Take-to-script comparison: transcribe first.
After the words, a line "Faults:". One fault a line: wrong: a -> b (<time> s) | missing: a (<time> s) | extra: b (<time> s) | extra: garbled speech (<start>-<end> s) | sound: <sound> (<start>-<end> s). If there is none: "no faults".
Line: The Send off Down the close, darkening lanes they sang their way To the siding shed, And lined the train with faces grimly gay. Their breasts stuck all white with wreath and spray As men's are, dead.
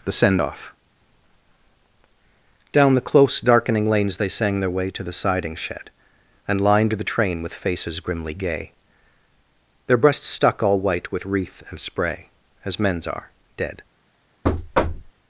The Send off Down the close, darkening lanes they sang their way To the siding shed, And lined the train with faces grimly gay. Their breasts stuck all white with wreath and spray As men's are, dead.
Faults:
sound: thud (14.4-15.1 s)